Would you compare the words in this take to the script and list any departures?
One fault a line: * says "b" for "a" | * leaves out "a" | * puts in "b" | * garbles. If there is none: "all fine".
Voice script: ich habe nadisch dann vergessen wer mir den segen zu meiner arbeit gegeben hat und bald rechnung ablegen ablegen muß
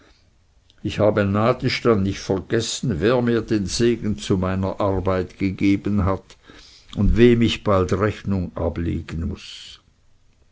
* puts in "nicht"
* puts in "wem ich"
* leaves out "ablegen"